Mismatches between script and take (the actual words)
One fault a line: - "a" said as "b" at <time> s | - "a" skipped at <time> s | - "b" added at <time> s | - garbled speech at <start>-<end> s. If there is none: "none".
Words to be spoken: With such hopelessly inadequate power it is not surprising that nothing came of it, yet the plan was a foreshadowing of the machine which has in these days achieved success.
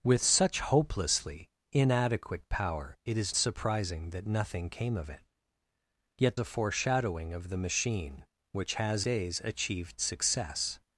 - "not" skipped at 3.4 s
- "the plan was" skipped at 6.4 s
- "in these" skipped at 9.0 s